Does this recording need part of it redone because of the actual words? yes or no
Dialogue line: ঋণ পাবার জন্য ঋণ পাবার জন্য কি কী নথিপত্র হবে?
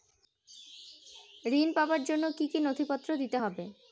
yes